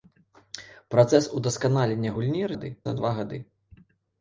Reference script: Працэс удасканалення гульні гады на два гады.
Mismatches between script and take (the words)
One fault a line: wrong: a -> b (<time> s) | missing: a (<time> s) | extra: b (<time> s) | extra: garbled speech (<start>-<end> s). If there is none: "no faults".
no faults